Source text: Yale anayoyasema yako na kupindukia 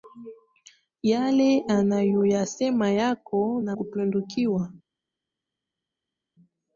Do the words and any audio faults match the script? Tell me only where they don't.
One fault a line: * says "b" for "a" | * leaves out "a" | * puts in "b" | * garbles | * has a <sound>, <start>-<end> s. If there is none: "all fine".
all fine